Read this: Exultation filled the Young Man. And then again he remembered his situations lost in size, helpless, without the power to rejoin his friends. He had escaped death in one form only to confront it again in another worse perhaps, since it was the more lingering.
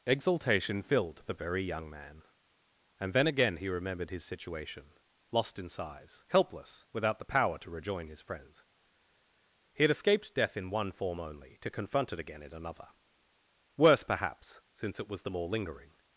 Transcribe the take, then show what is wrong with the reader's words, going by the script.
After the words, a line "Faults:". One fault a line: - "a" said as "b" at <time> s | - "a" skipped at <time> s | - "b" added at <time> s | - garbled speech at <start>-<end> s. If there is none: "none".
Exultation filled the Very Young Man. And then again he remembered his situation lost in size, helpless, without the power to rejoin his friends. He had escaped death in one form only to confront it again in another worse perhaps, since it was the more lingering.
Faults:
- "Very" added at 1.3 s
- "situations" said as "situation" at 4.2 s